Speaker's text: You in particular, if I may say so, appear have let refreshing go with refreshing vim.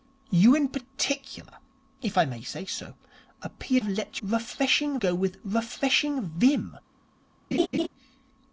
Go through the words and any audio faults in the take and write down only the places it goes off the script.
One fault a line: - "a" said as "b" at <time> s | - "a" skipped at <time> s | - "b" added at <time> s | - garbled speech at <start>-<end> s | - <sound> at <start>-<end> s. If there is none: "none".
- laugh at 7.5-7.9 s